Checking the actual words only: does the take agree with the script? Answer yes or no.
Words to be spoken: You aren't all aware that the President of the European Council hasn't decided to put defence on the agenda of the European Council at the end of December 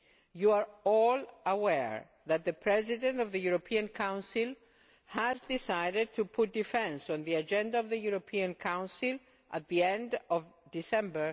no